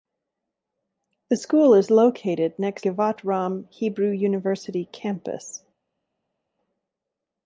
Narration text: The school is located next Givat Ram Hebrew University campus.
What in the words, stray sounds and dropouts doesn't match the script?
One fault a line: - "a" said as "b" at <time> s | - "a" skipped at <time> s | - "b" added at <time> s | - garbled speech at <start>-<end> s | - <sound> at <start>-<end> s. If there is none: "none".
none